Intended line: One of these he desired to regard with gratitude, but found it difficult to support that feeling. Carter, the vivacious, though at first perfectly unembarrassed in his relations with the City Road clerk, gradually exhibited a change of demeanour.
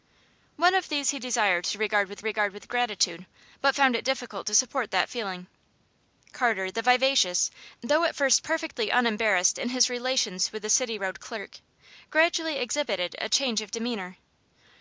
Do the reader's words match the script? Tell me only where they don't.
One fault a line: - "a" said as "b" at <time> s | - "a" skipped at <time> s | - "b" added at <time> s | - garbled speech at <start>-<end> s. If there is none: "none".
- "regard with" added at 2.2 s